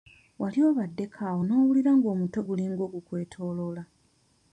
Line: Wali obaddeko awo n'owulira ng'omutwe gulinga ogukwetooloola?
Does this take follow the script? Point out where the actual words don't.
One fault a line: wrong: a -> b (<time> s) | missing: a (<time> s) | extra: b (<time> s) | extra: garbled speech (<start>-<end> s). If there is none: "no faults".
no faults